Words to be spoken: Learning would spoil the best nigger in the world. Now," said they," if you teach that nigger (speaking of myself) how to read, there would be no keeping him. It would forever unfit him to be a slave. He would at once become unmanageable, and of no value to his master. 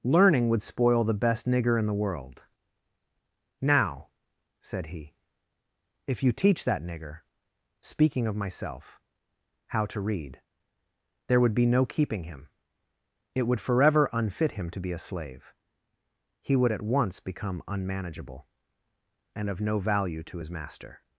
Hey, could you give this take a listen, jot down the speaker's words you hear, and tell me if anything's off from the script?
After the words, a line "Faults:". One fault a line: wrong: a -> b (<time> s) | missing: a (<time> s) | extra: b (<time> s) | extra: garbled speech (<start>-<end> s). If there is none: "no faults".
Learning would spoil the best nigger in the world. Now," said he," if you teach that nigger (speaking of myself) how to read, there would be no keeping him. It would forever unfit him to be a slave. He would at once become unmanageable, and of no value to his master.
Faults:
wrong: they -> he (4.9 s)